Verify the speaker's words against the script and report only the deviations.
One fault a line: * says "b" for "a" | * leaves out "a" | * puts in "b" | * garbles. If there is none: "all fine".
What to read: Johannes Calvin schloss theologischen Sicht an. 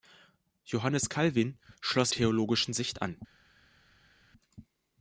all fine